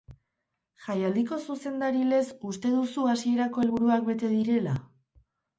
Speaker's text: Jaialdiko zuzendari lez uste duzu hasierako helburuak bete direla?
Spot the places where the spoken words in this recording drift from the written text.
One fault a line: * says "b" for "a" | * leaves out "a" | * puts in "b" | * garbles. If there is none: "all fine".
all fine